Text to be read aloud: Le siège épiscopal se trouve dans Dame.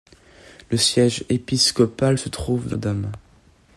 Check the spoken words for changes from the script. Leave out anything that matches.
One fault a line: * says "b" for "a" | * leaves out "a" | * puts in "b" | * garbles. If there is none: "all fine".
all fine